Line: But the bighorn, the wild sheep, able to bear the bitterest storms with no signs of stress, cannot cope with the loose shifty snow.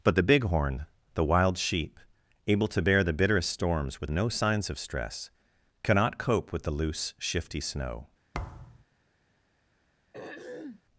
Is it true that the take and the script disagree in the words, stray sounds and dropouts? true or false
true